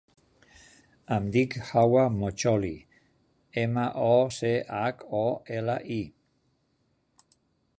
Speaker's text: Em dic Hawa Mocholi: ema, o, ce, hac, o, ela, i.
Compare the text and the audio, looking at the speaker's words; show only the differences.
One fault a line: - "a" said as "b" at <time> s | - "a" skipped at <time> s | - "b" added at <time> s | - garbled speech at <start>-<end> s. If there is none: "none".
none